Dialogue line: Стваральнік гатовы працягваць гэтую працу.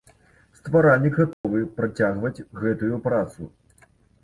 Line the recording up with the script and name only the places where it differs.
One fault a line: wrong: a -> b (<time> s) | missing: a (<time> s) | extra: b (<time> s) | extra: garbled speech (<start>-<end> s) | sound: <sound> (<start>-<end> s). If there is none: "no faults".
sound: dropout (1.3-1.4 s)